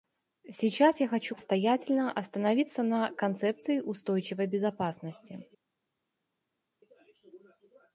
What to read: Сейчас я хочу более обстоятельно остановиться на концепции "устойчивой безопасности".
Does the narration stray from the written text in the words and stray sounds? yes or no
yes